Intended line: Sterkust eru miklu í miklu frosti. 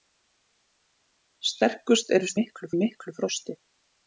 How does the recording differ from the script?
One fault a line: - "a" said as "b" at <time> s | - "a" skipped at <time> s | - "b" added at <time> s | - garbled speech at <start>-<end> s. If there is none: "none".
none